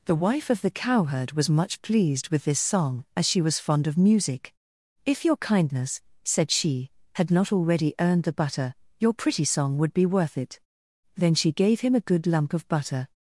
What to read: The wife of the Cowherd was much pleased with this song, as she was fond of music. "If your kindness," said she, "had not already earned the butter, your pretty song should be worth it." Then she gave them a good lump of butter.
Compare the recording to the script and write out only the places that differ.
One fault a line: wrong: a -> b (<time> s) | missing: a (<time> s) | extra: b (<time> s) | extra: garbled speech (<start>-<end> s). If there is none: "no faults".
wrong: should -> would (9.8 s)
wrong: them -> him (11.8 s)